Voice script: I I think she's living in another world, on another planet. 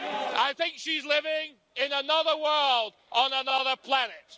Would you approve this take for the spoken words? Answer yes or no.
no